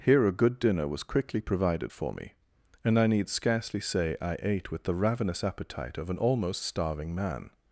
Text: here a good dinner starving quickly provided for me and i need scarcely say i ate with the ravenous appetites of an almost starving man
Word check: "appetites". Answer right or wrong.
wrong